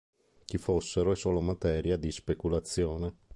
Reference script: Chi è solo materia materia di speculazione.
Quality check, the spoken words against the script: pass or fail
fail